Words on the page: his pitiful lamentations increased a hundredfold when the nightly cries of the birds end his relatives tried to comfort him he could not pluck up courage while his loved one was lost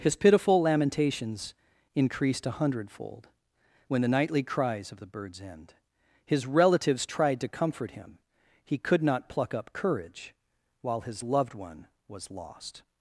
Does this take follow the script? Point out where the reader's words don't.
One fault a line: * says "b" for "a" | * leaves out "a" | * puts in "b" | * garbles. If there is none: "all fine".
all fine